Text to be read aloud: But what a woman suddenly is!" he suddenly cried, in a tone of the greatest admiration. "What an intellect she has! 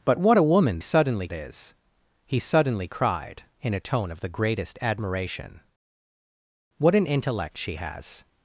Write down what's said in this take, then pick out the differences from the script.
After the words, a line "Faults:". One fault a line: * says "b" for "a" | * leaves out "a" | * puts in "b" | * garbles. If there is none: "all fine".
But what a woman suddenly is!" he suddenly cried, in a tone of the greatest admiration. "What an intellect she has!
Faults:
all fine